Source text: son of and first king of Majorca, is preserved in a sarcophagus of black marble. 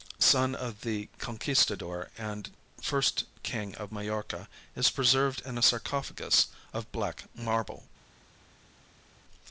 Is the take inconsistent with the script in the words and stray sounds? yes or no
yes